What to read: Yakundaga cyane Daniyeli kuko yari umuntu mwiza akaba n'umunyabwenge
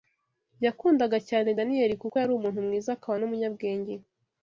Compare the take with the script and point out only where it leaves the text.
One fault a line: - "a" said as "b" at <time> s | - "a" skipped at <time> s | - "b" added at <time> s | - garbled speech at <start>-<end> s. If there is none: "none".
none